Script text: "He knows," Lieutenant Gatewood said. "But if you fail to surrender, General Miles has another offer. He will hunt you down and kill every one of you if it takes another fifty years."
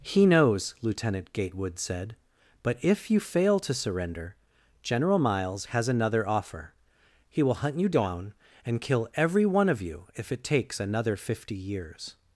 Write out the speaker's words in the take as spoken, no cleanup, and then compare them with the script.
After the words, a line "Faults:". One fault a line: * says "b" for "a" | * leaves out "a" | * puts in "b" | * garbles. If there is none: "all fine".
"He knows," Lieutenant Gatewood said. "But if you fail to surrender, General Miles has another offer. He will hunt you down and kill every one of you if it takes another fifty years."
Faults:
all fine